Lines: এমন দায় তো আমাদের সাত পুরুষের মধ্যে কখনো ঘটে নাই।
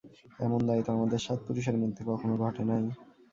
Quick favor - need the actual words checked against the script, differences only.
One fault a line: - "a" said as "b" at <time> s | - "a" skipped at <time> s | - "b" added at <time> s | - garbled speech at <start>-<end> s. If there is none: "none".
none